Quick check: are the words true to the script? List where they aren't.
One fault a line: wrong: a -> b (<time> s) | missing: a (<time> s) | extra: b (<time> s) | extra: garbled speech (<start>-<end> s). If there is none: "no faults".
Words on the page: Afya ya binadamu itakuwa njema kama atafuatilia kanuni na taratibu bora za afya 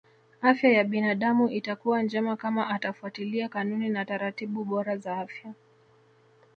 no faults